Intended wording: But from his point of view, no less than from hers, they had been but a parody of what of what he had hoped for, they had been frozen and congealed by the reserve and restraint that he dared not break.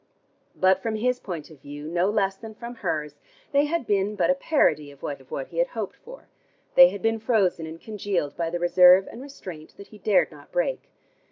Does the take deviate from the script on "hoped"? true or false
false